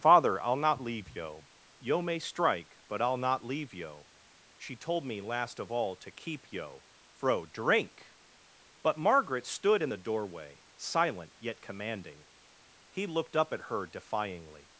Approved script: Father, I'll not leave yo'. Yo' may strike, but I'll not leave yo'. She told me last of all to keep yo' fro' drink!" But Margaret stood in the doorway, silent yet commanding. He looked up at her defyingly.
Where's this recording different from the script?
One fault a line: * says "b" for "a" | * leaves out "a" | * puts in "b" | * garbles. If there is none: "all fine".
all fine